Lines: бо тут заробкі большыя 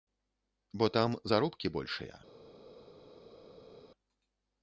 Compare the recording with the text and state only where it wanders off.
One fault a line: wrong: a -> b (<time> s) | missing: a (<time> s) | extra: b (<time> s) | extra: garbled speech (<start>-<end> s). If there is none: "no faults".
wrong: тут -> там (1.0 s)